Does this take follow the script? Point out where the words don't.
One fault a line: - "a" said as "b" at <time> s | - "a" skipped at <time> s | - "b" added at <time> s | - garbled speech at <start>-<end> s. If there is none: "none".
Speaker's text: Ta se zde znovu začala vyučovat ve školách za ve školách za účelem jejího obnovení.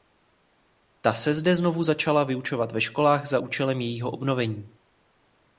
- "ve školách za" skipped at 3.4 s